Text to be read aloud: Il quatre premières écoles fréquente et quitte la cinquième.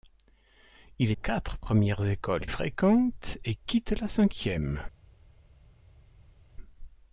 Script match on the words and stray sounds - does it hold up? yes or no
yes